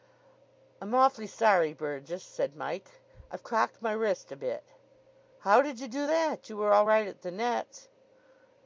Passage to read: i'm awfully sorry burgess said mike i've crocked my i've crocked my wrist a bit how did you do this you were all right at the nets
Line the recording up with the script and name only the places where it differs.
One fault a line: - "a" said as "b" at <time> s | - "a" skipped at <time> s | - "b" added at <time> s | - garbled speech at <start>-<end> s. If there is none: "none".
- "i've crocked my" skipped at 3.9 s
- "this" said as "that" at 6.1 s